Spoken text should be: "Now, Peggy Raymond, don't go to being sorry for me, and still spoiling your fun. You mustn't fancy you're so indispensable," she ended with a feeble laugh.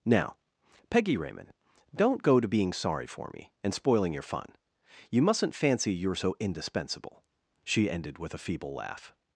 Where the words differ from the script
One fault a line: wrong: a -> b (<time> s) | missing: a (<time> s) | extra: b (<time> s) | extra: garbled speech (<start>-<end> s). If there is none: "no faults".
missing: still (3.7 s)